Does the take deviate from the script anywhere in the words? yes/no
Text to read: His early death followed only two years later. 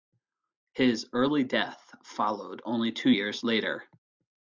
no